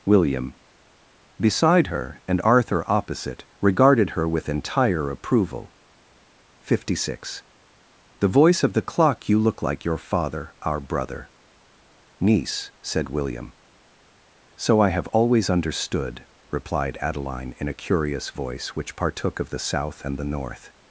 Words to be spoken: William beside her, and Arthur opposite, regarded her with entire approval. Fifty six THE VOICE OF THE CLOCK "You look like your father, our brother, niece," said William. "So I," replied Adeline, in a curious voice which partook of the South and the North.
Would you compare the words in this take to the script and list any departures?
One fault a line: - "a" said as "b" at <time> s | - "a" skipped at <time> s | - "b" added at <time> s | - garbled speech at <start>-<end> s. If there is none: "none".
- "have always understood" added at 14.9 s